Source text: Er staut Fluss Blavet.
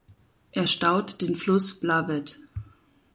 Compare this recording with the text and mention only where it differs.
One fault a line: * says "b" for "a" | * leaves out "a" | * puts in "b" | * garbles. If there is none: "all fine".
* puts in "den"